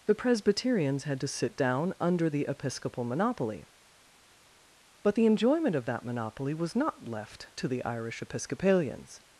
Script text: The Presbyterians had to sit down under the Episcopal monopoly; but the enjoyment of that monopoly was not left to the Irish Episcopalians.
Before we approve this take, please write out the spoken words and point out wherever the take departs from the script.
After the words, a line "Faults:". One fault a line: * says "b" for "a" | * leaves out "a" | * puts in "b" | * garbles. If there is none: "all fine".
The Presbyterians had to sit down under the Episcopal monopoly; but the enjoyment of that monopoly was not left to the Irish Episcopalians.
Faults:
all fine